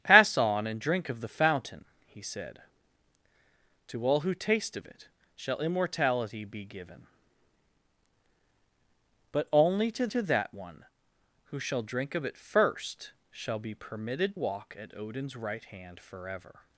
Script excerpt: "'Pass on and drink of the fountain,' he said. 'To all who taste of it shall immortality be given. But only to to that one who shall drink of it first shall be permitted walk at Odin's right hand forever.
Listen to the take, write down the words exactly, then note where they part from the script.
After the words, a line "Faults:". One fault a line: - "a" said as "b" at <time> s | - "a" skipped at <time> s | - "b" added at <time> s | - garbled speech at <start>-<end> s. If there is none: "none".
"'Pass on and drink of the fountain,' he said. 'To all who taste of it shall immortality be given. But only to to that one who shall drink of it first shall be permitted walk at Odin's right hand forever.
Faults:
none